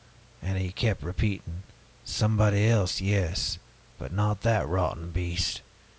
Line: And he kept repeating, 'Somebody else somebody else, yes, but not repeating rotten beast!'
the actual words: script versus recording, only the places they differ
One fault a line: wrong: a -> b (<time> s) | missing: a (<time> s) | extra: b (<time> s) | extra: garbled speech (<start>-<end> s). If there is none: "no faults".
missing: somebody else (3.0 s)
wrong: repeating -> that (4.4 s)